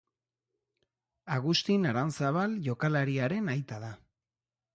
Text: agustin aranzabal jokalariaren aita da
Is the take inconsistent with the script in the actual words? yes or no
no